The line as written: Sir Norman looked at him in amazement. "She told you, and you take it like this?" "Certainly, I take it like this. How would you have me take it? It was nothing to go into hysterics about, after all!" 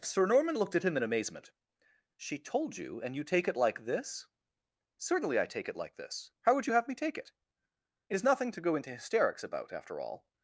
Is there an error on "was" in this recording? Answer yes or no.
yes